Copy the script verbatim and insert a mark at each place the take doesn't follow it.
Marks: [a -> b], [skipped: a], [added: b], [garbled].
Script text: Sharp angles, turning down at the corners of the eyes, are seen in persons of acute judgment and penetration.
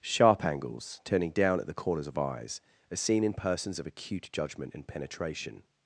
Sharp angles, turning down at the corners of [skipped: the] eyes, are seen in persons of acute judgment and penetration.